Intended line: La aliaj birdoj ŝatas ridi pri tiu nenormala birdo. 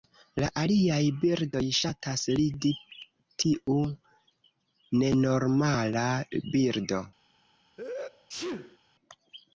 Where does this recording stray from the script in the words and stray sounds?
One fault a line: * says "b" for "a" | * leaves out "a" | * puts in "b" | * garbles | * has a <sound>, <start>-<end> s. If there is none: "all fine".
* leaves out "pri"
* has a sneeze, 7.8-8.8 s